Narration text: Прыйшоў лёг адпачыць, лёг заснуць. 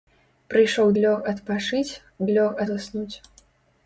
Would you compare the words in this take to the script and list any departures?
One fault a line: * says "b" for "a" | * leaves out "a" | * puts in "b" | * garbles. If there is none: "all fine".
all fine